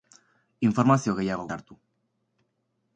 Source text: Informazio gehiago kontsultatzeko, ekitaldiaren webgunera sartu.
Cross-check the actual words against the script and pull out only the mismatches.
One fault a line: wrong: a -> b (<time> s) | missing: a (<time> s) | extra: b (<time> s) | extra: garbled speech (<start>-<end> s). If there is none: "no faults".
missing: kontsultatzeko ekitaldiaren webgunera (1.4 s)